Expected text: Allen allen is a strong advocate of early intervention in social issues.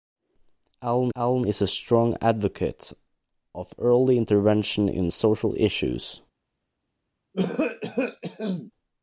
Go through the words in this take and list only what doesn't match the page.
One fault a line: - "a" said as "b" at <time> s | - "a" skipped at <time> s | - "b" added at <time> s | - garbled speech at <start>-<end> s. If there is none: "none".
none